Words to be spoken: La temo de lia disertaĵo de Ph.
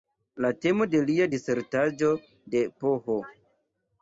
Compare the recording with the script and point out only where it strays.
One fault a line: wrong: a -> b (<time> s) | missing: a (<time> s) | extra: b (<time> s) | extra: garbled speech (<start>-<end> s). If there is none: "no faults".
no faults